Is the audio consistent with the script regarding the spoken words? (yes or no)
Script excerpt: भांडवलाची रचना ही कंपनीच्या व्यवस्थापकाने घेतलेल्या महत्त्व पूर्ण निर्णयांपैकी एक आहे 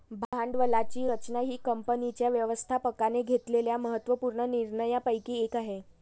yes